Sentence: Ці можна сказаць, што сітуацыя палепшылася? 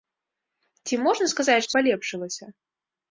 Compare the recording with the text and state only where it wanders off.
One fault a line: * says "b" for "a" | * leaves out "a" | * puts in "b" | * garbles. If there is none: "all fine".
* leaves out "сітуацыя"